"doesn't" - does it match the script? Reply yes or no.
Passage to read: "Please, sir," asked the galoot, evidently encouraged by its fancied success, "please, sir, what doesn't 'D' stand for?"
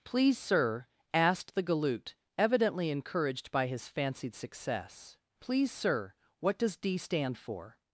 no